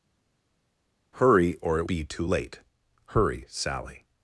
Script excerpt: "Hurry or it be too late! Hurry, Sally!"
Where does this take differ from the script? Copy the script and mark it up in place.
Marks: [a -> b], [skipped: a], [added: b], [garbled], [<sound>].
"Hurry or it be too late! Hurry, Sally!"